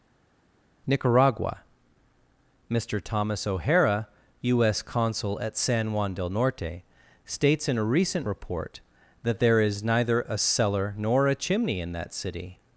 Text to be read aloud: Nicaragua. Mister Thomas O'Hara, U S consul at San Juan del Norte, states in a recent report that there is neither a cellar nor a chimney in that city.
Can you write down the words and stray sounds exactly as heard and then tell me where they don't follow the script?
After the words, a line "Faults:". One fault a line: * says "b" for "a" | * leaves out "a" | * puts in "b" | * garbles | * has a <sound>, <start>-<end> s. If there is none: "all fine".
Nicaragua. Mister Thomas O'Hara, U S consul at San Juan del Norte, states in a recent report that there is neither a cellar nor a chimney in that city.
Faults:
all fine